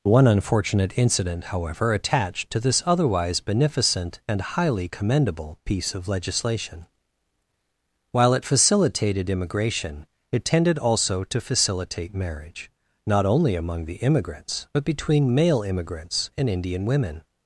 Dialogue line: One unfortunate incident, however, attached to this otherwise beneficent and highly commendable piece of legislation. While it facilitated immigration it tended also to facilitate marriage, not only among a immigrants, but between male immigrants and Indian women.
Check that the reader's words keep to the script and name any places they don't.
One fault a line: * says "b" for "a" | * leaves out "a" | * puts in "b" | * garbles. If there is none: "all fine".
* says "the" for "a"